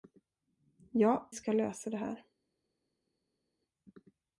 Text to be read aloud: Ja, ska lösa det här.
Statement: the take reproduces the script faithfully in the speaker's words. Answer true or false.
true